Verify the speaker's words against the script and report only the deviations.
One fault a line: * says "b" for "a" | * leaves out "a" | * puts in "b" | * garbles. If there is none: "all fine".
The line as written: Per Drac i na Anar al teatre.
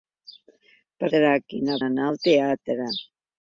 all fine